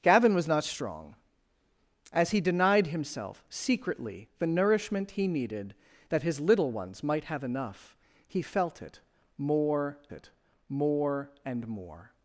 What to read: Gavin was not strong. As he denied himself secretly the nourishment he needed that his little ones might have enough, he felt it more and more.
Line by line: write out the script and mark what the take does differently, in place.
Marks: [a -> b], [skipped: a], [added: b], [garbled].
Gavin was not strong. As he denied himself secretly the nourishment he needed that his little ones might have enough, he felt it more [added: it more] and more.